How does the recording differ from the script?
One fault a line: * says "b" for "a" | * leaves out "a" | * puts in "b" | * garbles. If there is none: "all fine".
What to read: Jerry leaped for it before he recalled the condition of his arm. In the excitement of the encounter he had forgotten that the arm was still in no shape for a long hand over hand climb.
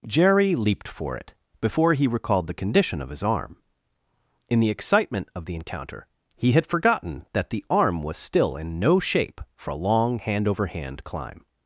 all fine